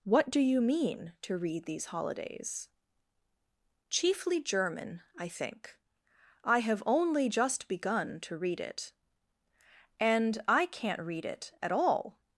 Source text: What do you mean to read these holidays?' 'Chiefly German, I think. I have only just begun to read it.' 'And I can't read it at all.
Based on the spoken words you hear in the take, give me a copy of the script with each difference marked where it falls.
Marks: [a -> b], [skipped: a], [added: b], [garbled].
What do you mean to read these holidays?' 'Chiefly German, I think. I have only just begun to read it.' 'And I can't read it at all.